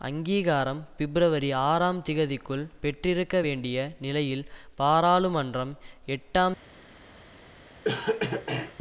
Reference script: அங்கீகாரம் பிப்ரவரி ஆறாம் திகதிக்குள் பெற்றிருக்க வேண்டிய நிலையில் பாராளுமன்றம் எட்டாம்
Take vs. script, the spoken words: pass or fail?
pass